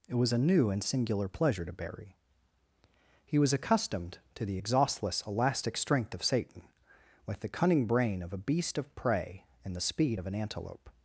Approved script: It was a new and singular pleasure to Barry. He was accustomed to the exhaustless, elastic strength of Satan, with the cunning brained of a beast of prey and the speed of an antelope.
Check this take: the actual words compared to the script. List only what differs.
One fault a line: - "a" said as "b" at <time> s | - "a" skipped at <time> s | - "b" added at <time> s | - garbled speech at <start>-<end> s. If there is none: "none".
- "brained" said as "brain" at 7.8 s